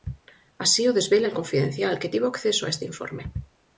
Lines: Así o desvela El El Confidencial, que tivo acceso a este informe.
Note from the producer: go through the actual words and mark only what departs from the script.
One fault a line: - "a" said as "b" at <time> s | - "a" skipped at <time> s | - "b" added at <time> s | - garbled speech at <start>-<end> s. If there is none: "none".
- "El" skipped at 1.4 s